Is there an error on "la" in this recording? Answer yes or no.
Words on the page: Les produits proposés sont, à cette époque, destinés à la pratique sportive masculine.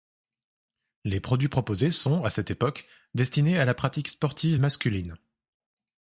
no